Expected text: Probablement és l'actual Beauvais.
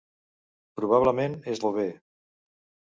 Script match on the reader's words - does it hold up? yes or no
no